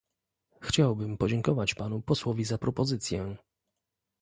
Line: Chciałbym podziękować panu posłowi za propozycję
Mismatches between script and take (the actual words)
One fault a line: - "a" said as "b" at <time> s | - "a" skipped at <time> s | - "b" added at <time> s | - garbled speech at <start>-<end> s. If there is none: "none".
none